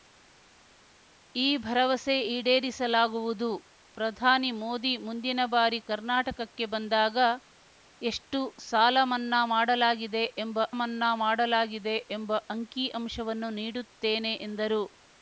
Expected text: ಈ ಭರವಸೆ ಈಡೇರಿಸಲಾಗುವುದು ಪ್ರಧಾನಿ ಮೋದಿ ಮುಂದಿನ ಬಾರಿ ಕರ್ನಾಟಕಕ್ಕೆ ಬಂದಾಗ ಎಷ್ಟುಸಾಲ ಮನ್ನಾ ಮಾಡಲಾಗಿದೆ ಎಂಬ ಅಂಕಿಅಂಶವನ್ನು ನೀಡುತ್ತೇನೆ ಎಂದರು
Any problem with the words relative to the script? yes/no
yes